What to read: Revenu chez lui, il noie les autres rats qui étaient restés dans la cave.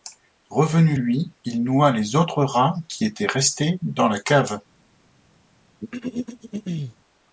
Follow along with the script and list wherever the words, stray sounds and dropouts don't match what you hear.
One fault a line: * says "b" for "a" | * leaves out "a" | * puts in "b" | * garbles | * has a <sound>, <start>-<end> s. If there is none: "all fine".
* leaves out "chez"
* has a throat clearing, 5.8-7.0 s